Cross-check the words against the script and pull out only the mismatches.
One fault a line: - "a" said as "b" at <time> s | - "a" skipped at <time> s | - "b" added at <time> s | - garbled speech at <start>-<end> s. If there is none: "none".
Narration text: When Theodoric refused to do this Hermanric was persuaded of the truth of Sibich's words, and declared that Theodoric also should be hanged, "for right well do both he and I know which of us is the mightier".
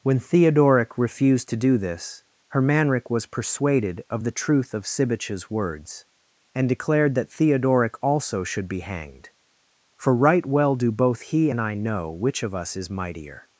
- "the" skipped at 12.9 s